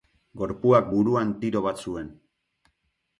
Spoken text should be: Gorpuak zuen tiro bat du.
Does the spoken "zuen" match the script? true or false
false